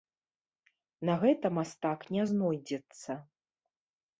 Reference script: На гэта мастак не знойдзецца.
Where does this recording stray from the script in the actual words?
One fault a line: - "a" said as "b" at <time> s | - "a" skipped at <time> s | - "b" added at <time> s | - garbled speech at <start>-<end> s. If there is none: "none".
none